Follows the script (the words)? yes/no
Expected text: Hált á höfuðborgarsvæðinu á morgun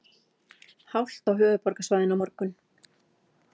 yes